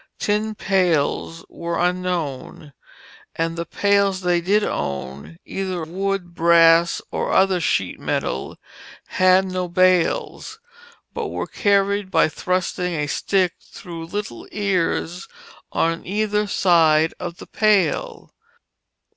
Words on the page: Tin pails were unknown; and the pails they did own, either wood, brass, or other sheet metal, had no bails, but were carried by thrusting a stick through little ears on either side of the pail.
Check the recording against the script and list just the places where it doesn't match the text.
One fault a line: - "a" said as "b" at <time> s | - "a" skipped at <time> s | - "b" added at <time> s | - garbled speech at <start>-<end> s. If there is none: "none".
none